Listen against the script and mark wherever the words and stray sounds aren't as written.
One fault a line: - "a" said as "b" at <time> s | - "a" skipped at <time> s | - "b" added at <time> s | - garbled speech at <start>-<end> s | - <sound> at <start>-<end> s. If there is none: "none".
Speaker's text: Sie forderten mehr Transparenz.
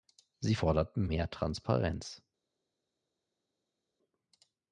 none